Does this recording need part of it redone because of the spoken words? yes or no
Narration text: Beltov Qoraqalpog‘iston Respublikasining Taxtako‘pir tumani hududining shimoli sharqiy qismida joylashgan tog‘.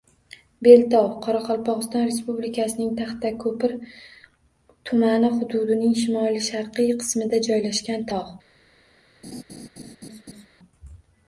no